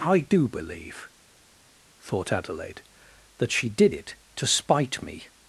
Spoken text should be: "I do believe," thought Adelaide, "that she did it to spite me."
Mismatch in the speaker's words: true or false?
false